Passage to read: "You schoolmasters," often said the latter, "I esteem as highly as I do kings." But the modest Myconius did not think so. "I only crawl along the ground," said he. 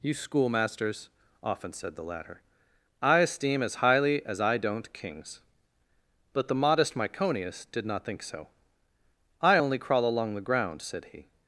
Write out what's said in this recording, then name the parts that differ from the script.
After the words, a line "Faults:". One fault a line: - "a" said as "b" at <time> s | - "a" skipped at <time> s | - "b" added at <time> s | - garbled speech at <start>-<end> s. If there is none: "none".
"You schoolmasters," often said the latter, "I esteem as highly as I don't kings." But the modest Myconius did not think so. "I only crawl along the ground," said he.
Faults:
- "do" said as "don't" at 4.6 s